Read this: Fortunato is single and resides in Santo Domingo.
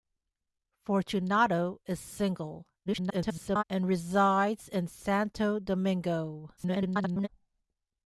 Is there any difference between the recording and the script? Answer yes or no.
yes